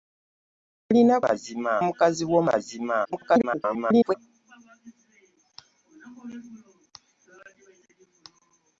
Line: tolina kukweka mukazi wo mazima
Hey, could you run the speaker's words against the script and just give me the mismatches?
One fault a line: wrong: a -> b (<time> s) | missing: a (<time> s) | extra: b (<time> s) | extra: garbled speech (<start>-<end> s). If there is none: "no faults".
wrong: kukweka -> mazima (1.2 s)
extra: garbled speech (3.0-4.1 s)